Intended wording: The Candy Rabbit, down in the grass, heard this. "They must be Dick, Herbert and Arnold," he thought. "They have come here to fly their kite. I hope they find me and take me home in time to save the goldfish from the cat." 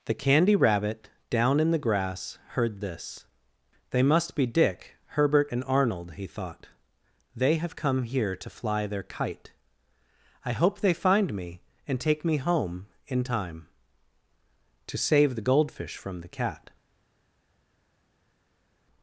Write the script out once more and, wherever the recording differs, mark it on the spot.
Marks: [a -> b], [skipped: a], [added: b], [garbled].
The Candy Rabbit, down in the grass, heard this. "They must be Dick, Herbert and Arnold," he thought. "They have come here to fly their kite. I hope they find me and take me home in time to save the goldfish from the cat."